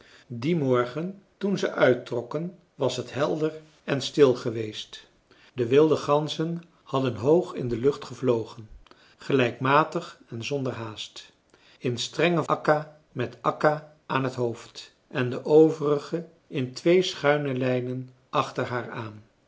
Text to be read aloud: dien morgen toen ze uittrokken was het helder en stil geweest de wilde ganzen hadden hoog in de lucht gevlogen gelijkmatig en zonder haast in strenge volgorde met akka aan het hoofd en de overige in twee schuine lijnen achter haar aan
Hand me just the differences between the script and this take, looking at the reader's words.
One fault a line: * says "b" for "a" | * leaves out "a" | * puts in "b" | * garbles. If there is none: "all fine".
* says "akka" for "volgorde"